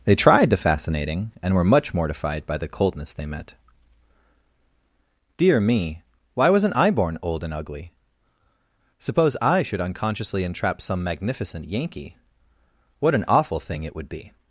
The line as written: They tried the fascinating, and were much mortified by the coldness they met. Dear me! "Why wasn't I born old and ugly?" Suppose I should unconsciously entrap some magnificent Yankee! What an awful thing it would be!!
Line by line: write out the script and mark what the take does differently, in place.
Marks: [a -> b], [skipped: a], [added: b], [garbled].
They tried the fascinating, and were much mortified by the coldness they met. Dear me! "Why wasn't I born old and ugly?" Suppose I should unconsciously entrap some magnificent Yankee! What an awful thing it would be!!